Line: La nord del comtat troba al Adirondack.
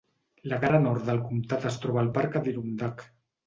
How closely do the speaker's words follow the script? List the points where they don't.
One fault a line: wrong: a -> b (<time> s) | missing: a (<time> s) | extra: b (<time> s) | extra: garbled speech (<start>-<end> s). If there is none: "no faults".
extra: cara (0.6 s)
extra: es (1.7 s)
extra: parc (2.2 s)